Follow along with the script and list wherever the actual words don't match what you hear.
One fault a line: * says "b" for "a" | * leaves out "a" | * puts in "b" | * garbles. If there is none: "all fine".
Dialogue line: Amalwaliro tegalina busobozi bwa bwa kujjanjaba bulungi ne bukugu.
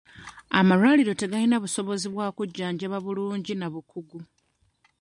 * leaves out "bwa"
* says "na" for "ne"